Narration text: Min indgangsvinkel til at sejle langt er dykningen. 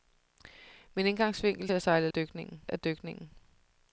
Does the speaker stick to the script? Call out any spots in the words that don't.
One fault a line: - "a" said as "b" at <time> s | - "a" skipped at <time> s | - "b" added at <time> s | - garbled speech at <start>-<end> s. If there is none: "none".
- "til" skipped at 1.7 s
- "langt" said as "dykningen" at 2.1 s